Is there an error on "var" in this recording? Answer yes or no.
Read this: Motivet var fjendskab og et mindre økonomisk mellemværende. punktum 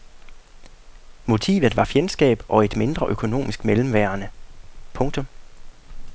no